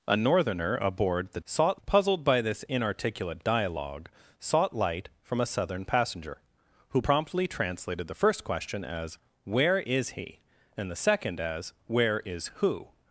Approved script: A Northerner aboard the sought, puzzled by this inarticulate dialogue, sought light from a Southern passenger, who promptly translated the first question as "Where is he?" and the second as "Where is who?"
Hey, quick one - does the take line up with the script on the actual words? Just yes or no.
yes